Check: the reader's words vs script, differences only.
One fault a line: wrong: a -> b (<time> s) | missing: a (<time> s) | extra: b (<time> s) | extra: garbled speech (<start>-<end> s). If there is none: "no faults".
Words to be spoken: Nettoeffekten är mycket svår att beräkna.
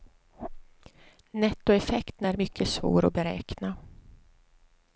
no faults